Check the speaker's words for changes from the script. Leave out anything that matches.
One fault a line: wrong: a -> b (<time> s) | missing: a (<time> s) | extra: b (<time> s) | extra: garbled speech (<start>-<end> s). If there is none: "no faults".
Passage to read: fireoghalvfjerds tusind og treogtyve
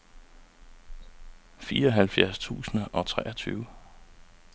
no faults